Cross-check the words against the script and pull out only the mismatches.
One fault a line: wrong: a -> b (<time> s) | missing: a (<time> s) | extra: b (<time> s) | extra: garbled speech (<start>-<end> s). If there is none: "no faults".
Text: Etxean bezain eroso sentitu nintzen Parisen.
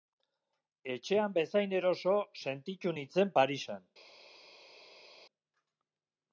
no faults